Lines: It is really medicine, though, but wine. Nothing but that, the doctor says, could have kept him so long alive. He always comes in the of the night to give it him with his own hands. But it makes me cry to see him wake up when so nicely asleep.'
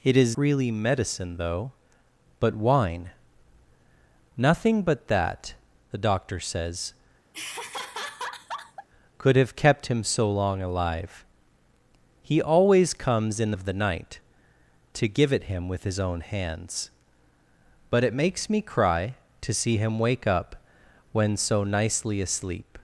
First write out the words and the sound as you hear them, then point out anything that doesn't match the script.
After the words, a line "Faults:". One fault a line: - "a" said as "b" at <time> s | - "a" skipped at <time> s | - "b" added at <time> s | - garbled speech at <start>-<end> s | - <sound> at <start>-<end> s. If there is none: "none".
It is really medicine, though, but wine. Nothing but that, the doctor says, could have kept him so long alive. He always comes in the of the night to give it him with his own hands. But it makes me cry to see him wake up when so nicely asleep.'
Faults:
- laugh at 7.3-8.9 s